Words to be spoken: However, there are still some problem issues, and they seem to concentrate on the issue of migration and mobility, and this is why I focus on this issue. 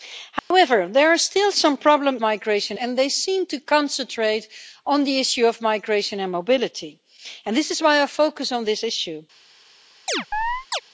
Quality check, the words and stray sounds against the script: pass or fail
fail